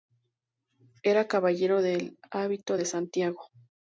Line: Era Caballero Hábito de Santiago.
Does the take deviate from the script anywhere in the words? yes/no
yes